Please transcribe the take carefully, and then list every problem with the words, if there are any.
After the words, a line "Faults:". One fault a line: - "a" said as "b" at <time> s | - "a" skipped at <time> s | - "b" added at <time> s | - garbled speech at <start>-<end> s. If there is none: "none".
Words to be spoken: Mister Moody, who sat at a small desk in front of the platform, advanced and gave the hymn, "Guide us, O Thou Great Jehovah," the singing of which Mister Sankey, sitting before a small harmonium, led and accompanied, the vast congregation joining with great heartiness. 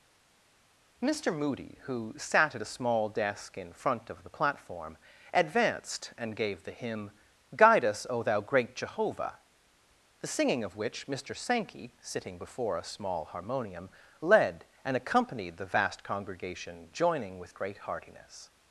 Mister Moody, who sat at a small desk in front of the platform, advanced and gave the hymn, "Guide us, O Thou Great Jehovah," the singing of which Mister Sankey, sitting before a small harmonium, led and accompanied, the vast congregation joining with great heartiness.
Faults:
none